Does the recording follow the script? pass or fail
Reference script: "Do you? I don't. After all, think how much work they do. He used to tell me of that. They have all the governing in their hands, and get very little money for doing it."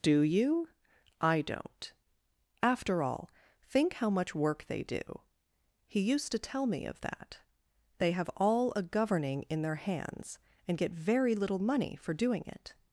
fail